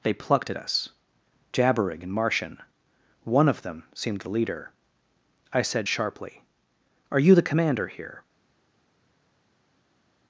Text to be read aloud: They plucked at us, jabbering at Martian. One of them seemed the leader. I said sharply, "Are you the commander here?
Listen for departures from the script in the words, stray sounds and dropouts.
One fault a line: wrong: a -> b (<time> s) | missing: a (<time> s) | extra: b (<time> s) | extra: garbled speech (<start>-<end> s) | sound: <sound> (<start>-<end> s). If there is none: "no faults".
wrong: at -> in (2.0 s)